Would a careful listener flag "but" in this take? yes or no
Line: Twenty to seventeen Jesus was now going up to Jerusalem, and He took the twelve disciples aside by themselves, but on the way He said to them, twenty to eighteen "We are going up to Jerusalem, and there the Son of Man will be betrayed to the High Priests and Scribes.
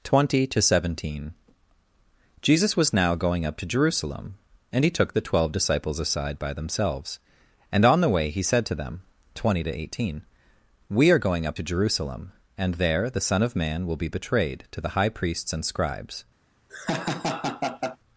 yes